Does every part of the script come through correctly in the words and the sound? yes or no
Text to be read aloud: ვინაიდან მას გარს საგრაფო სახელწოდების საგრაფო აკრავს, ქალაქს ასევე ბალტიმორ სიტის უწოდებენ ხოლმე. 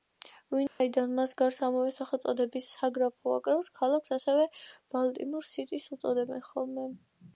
no